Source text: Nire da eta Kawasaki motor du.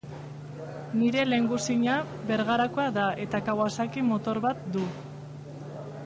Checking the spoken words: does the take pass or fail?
fail